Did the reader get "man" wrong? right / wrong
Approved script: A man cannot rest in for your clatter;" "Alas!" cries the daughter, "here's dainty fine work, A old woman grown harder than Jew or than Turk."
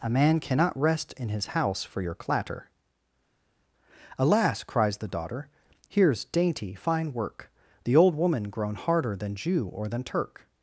right